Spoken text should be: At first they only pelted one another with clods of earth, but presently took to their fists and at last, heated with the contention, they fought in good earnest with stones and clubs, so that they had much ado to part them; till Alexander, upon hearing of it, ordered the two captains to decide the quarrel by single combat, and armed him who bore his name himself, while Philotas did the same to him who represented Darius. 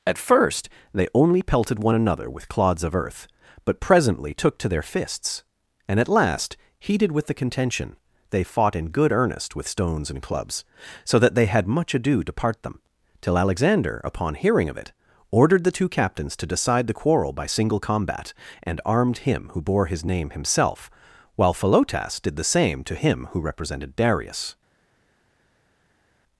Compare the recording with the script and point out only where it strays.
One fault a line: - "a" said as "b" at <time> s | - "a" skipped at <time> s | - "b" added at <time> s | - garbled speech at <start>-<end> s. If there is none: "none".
none